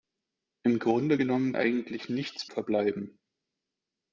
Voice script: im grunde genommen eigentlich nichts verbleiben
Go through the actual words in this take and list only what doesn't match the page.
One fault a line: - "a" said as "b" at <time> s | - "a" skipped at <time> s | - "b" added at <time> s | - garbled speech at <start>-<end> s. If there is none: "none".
none